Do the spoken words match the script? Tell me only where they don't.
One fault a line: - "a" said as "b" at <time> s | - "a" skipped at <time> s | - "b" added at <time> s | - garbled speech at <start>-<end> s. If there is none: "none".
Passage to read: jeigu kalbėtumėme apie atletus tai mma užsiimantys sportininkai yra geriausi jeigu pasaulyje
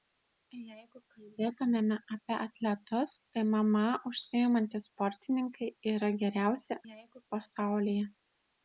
none